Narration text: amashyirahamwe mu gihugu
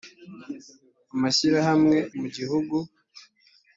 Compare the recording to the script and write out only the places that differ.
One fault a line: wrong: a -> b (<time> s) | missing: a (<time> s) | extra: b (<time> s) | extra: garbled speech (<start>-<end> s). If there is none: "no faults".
no faults